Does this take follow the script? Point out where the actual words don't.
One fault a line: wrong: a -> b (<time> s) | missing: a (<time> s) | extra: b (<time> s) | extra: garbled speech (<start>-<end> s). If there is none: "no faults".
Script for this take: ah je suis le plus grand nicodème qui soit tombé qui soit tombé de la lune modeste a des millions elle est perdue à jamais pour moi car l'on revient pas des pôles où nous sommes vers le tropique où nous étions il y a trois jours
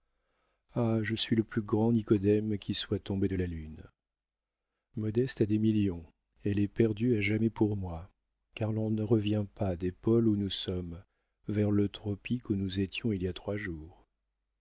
missing: qui soit tombé (3.3 s)
extra: ne (8.9 s)